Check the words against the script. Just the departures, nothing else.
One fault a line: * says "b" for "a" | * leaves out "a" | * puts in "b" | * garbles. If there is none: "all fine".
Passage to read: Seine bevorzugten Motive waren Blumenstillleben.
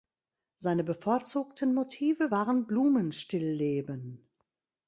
all fine